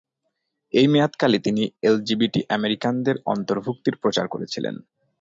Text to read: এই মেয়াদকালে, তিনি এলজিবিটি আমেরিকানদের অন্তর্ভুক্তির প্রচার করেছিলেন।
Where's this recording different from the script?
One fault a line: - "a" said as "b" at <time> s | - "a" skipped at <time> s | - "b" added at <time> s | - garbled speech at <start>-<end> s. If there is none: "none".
none